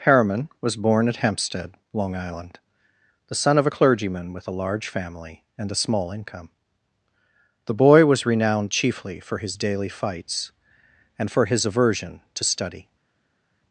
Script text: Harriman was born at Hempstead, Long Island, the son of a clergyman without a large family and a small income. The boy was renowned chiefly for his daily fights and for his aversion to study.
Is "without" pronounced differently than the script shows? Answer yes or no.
yes